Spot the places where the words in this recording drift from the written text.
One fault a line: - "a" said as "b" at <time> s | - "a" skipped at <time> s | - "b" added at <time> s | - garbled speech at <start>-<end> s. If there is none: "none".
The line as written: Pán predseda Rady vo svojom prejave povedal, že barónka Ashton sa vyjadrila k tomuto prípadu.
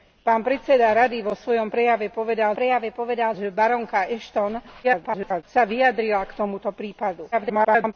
- "prejave povedal" added at 2.6 s
- garbled speech at 4.8-5.4 s
- garbled speech at 7.3-7.9 s